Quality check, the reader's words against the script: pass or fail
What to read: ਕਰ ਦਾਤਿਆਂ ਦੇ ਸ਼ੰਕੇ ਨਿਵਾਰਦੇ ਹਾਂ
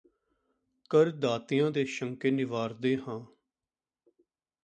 pass